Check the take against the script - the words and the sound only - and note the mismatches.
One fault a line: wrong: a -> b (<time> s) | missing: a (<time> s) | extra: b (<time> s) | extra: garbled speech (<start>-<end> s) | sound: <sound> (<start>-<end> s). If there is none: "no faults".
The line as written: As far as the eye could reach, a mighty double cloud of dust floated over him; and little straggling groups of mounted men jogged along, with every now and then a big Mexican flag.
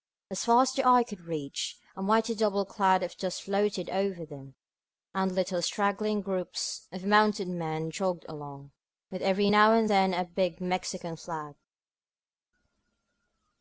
wrong: him -> them (4.2 s)